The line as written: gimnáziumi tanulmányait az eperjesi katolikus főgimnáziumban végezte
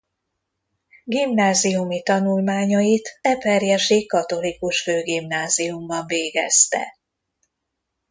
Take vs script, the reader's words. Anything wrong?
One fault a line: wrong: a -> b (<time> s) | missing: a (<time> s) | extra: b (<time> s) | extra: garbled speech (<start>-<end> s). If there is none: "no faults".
missing: az (3.2 s)